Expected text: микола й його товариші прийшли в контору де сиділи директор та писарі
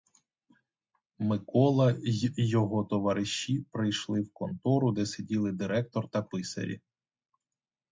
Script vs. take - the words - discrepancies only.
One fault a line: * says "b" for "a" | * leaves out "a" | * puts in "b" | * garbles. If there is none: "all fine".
all fine